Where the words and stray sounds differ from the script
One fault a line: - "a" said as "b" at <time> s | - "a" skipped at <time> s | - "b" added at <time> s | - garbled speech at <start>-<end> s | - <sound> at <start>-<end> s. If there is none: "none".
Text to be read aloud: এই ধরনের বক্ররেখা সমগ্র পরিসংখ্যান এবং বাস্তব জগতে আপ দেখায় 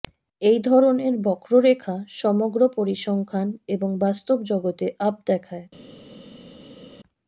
none